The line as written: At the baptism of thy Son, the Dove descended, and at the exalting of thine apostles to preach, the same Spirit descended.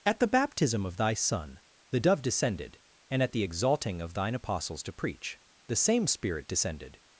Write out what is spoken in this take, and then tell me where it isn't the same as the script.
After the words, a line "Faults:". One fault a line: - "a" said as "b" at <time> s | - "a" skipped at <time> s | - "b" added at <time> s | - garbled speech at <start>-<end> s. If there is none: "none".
At the baptism of thy Son, the Dove descended, and at the exalting of thine apostles to preach, the same Spirit descended.
Faults:
none